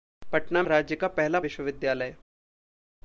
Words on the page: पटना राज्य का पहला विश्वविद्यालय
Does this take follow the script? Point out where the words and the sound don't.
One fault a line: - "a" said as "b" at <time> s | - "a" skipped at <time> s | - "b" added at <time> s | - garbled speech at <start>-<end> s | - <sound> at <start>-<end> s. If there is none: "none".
none